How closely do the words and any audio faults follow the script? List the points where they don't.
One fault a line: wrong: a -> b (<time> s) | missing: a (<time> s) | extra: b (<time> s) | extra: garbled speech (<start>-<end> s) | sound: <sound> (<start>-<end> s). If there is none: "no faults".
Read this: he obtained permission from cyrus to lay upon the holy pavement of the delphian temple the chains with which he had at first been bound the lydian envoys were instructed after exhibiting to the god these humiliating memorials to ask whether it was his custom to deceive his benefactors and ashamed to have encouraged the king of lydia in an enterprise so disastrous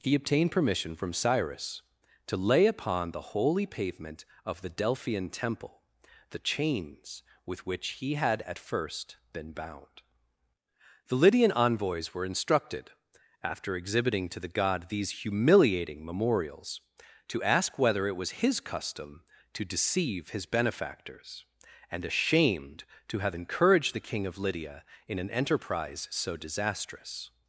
no faults